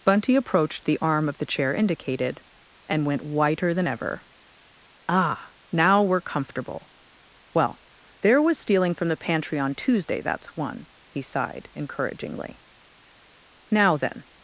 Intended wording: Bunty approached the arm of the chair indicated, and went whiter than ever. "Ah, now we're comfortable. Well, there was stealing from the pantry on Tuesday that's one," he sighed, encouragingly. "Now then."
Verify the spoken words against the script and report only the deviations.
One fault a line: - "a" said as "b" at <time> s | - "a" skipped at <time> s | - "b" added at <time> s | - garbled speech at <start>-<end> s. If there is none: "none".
none